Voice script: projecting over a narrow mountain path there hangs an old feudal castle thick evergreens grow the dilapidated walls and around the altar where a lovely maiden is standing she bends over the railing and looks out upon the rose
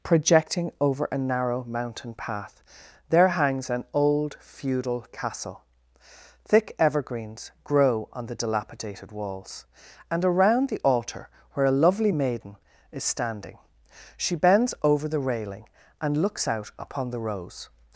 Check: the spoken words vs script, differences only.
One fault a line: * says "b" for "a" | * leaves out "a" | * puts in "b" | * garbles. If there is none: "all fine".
* puts in "on"